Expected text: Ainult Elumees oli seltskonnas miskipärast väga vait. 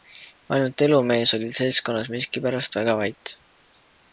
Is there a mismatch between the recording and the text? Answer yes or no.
no